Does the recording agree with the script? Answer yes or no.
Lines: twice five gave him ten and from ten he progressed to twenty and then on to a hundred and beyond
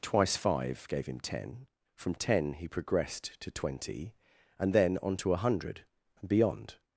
no